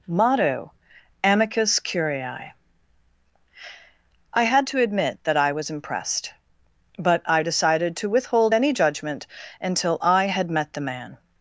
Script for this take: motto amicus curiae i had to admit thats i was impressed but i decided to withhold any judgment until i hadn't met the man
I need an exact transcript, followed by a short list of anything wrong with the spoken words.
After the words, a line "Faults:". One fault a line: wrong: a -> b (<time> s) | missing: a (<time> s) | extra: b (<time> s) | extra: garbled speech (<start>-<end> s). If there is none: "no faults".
motto amicus curiae i had to admit that i was impressed but i decided to withhold any judgment until i had met the man
Faults:
wrong: thats -> that (5.2 s)
wrong: hadn't -> had (10.3 s)